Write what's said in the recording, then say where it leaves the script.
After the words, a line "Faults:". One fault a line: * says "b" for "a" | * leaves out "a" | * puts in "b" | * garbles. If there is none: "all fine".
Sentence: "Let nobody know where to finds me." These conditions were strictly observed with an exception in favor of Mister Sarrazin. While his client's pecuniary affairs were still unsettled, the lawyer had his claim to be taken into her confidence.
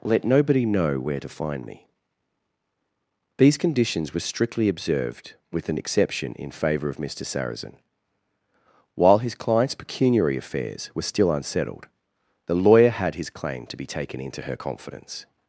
"Let nobody know where to find me." These conditions were strictly observed with an exception in favor of Mister Sarrazin. While his client's pecuniary affairs were still unsettled, the lawyer had his claim to be taken into her confidence.
Faults:
* says "find" for "finds"